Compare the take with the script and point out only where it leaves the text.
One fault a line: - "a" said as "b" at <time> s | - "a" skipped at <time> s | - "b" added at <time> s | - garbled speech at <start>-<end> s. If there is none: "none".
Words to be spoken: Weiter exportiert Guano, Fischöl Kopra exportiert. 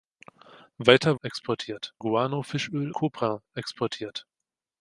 none